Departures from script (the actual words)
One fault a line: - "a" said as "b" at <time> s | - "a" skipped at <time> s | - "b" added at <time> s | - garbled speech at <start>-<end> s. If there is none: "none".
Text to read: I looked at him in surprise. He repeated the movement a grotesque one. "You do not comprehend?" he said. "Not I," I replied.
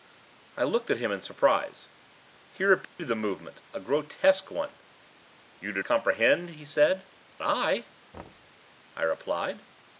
- "not" skipped at 5.8 s
- "Not" skipped at 7.0 s